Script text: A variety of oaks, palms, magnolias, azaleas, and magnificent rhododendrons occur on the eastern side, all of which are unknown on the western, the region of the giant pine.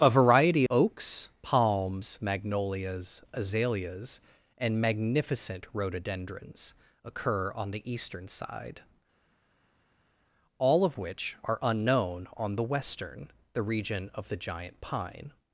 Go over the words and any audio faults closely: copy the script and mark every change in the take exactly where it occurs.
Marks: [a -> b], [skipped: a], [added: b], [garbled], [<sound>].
A variety [skipped: of] oaks, palms, magnolias, azaleas, and magnificent rhododendrons occur on the eastern side, all of which are unknown on the western, the region of the giant pine.